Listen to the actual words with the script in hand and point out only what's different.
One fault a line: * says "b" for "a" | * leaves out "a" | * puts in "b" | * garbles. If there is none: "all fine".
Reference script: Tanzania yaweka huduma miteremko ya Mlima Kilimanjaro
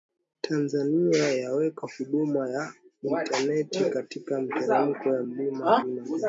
* puts in "ya intaneti katika"